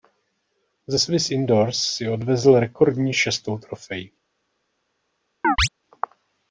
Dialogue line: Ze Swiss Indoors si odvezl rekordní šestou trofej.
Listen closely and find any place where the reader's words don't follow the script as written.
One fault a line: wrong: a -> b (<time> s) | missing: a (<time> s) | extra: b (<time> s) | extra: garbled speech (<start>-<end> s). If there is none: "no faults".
no faults